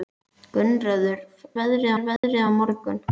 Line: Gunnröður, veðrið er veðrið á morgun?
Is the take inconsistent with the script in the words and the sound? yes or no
yes